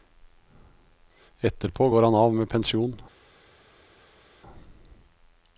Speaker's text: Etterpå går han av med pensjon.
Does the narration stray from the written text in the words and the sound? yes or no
no